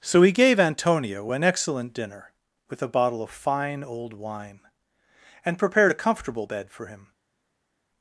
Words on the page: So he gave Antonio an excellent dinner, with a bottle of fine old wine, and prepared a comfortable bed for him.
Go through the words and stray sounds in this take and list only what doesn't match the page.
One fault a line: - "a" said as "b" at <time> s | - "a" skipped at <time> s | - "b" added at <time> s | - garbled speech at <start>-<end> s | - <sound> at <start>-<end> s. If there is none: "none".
none